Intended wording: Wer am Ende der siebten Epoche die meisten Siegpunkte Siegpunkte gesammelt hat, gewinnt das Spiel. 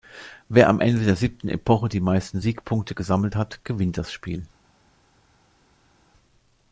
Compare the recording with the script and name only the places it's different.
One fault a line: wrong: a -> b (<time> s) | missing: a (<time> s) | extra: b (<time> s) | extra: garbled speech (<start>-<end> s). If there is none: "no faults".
missing: Siegpunkte (2.9 s)